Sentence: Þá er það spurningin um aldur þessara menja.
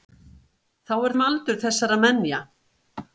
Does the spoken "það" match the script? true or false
false